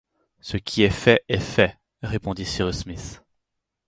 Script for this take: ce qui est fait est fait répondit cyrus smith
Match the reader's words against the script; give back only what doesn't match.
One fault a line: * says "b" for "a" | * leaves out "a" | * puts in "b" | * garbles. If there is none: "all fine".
all fine